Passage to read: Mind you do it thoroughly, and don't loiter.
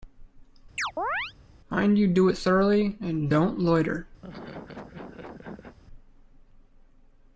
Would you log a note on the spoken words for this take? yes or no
no